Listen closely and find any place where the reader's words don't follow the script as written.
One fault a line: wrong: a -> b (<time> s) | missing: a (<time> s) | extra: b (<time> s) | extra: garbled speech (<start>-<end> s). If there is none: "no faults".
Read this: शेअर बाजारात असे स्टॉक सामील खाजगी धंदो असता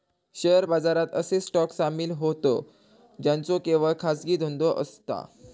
extra: होतं ज्यांचो केवळ (2.2 s)